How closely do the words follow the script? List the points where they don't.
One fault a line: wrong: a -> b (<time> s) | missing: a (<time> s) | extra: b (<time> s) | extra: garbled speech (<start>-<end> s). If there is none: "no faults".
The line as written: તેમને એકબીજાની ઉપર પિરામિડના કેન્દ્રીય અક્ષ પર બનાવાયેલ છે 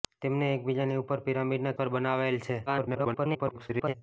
missing: કેન્દ્રીય અક્ષ (1.8 s)
extra: garbled speech (2.7-3.9 s)